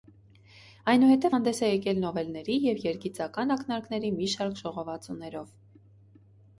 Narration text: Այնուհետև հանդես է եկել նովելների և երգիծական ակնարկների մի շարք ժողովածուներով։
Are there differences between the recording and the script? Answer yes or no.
no